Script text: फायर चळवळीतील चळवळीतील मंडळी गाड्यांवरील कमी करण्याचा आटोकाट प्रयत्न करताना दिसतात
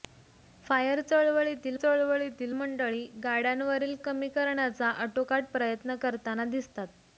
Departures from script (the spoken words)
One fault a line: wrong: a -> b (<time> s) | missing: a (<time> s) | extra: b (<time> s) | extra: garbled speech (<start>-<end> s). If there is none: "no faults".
no faults